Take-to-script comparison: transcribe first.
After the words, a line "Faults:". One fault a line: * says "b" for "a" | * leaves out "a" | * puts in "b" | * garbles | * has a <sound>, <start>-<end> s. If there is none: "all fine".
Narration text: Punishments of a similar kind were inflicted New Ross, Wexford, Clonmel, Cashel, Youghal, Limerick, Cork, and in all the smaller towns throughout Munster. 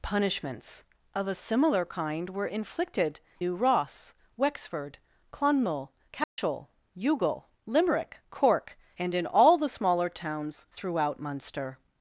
Punishments of a similar kind were inflicted New Ross, Wexford, Clonmel, Cashel, Youghal, Limerick, Cork, and in all the smaller towns throughout Munster.
Faults:
* has a dropout, 6.2-6.4 s